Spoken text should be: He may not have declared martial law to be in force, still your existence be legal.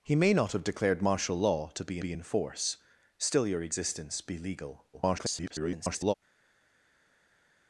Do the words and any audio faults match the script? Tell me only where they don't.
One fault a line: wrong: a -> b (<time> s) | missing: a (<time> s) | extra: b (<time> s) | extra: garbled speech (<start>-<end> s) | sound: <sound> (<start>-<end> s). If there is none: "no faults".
extra: be (2.0 s)
extra: garbled speech (4.9-6.1 s)